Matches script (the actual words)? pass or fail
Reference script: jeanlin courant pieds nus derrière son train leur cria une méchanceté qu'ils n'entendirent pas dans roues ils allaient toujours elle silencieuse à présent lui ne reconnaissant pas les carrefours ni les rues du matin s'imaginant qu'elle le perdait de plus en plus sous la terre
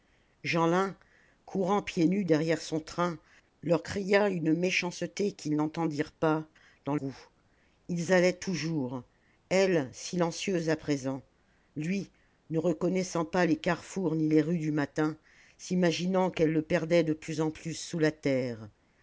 pass